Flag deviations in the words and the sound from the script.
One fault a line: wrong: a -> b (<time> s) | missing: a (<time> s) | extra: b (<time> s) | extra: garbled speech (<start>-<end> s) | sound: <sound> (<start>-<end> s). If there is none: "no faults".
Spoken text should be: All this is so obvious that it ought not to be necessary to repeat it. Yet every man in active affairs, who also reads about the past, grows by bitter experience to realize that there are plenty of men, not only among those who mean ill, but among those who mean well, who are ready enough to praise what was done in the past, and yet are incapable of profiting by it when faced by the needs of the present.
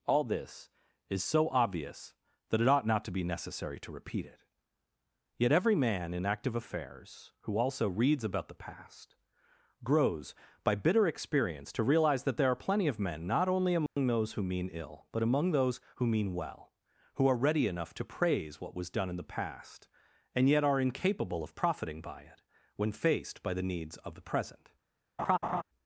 sound: dropout (13.9-14.0 s)
sound: laugh (25.2-25.6 s)